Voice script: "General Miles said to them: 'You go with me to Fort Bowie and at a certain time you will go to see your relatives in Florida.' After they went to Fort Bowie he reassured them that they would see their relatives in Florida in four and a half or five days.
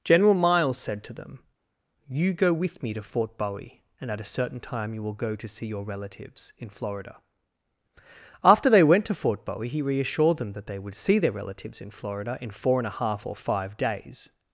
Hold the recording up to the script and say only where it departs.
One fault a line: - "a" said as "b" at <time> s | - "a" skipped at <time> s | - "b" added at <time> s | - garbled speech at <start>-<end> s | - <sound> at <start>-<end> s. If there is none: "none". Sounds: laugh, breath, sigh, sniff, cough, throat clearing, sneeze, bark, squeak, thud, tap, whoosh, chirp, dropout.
none